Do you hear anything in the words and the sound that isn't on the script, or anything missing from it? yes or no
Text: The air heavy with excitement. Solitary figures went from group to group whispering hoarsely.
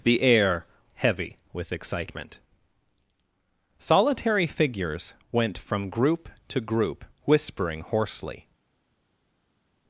no